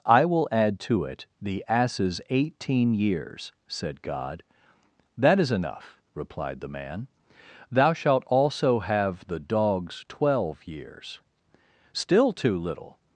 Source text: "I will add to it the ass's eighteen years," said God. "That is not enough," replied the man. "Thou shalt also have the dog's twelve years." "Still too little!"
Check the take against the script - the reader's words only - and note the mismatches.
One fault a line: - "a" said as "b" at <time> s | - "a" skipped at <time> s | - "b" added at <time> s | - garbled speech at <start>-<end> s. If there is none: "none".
- "not" skipped at 5.5 s